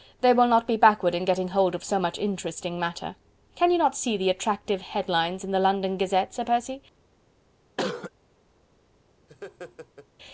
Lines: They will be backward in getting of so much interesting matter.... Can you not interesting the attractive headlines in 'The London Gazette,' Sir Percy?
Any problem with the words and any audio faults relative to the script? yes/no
yes